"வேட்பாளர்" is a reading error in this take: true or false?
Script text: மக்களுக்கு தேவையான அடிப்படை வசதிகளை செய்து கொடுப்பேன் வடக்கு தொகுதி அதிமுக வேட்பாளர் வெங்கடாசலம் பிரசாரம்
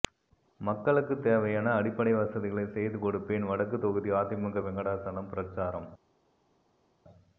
true